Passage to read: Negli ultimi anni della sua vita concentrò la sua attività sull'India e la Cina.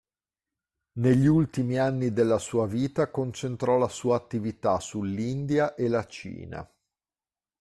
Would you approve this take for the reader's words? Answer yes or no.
yes